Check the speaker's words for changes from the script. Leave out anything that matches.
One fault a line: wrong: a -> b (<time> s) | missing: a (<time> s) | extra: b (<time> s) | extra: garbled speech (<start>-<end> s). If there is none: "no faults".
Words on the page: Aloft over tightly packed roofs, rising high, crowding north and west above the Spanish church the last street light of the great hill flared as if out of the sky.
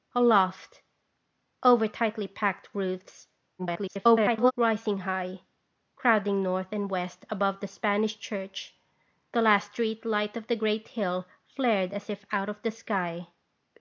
extra: garbled speech (3.6-4.5 s)